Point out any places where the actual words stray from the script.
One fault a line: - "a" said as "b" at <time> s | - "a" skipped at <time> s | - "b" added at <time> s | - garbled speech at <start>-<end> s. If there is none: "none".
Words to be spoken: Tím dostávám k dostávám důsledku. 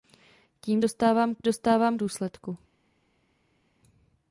none